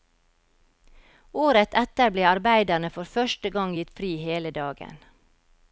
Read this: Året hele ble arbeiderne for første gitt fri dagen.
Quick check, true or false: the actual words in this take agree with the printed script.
false